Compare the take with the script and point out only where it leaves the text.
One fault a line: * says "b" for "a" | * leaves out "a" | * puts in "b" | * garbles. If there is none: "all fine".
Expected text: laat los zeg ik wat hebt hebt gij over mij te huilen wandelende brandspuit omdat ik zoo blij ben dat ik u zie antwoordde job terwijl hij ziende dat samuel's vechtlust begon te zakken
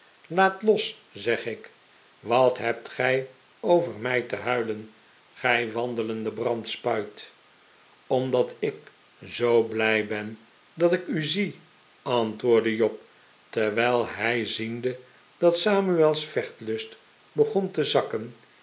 * leaves out "hebt"
* puts in "gij"